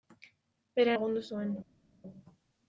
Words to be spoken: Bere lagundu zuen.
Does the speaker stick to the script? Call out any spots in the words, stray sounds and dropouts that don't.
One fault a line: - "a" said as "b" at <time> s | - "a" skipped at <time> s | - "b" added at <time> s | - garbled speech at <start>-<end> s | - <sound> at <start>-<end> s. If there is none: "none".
none